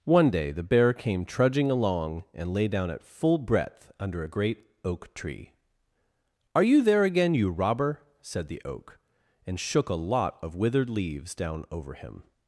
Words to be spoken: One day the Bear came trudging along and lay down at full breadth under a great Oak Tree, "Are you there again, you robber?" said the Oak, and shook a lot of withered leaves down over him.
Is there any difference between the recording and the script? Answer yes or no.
no